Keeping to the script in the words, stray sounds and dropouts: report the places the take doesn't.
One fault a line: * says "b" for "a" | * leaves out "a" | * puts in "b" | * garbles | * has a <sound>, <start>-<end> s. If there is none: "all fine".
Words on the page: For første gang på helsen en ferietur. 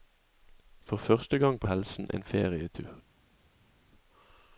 all fine